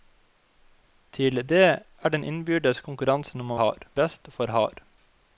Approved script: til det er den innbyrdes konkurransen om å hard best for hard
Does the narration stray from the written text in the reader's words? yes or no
no